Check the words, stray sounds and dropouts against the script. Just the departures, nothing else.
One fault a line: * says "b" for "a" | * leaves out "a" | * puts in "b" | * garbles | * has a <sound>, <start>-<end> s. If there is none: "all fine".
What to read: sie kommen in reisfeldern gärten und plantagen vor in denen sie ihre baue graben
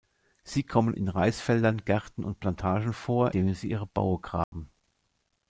* leaves out "in"
* has a dropout, 4.4-4.5 s